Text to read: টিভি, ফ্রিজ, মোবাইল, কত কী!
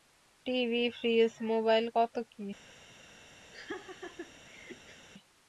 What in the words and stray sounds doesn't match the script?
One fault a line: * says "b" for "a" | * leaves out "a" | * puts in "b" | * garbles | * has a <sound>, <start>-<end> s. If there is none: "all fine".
* has a laugh, 3.5-5.1 s